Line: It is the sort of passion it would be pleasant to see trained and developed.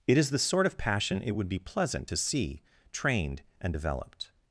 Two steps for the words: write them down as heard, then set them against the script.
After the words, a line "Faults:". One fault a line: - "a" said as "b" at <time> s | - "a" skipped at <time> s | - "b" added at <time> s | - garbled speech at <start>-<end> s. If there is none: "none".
It is the sort of passion it would be pleasant to see trained and developed.
Faults:
none